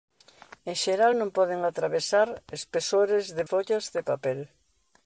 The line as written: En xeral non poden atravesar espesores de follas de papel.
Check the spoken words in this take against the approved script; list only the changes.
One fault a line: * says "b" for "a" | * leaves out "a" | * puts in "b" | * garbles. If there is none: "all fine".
all fine